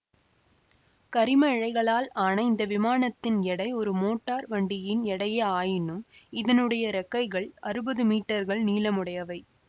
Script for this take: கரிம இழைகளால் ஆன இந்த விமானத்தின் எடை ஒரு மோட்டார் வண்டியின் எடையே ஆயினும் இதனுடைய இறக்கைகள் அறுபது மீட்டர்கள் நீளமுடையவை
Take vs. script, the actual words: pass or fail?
pass